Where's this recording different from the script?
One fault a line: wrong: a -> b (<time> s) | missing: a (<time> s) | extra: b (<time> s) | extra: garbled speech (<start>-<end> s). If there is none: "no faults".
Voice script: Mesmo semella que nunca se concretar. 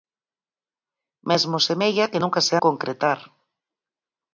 no faults